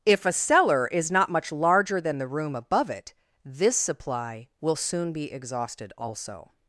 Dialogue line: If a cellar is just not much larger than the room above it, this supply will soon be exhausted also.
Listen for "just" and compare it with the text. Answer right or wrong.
wrong